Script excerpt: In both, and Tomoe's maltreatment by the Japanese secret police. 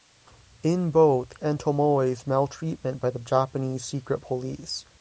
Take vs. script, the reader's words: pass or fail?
pass